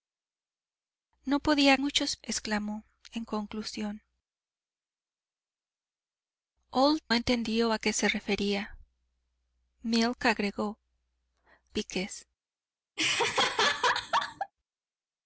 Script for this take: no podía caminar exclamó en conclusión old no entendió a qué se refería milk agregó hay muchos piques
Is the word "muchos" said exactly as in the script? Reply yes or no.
no